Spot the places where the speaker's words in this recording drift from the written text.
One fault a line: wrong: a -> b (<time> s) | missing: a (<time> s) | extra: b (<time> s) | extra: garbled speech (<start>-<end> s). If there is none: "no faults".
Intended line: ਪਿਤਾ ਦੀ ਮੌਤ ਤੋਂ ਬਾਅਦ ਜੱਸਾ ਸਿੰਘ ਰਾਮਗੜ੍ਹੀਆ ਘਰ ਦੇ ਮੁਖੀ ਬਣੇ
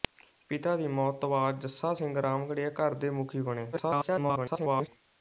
extra: garbled speech (3.7-4.9 s)